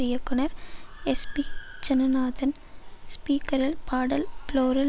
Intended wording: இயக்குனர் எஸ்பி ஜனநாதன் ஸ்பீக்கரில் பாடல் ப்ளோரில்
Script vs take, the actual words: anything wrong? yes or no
no